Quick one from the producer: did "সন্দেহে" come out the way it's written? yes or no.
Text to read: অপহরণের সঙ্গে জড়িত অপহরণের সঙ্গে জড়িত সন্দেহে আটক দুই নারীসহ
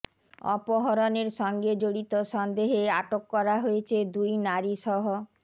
no